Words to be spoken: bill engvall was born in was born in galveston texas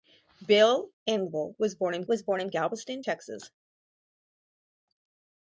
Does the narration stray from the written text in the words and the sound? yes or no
no